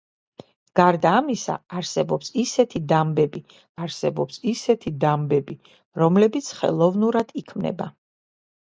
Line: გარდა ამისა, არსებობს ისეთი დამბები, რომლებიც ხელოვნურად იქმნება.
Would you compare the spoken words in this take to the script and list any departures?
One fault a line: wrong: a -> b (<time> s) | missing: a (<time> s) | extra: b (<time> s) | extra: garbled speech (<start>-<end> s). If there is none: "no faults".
extra: არსებობს ისეთი დამბები (3.9 s)